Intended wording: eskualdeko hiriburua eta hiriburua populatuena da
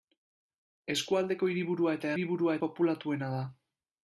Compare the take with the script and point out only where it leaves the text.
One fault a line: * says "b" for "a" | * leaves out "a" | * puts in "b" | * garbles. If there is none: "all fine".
all fine